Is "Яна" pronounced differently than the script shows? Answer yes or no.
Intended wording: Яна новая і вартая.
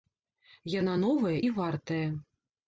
no